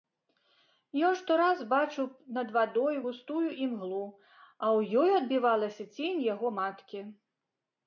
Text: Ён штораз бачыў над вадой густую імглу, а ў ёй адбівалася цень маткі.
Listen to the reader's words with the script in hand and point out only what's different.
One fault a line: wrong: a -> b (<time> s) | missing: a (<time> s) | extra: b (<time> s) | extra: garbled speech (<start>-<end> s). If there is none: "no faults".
extra: яго (6.3 s)